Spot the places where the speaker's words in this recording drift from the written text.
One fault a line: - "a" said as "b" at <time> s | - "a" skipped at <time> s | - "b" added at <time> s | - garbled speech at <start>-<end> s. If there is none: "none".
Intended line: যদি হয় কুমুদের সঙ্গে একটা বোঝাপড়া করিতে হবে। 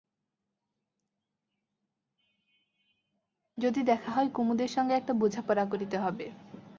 - "দেখা" added at 3.8 s